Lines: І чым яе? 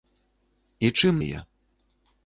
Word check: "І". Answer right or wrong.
right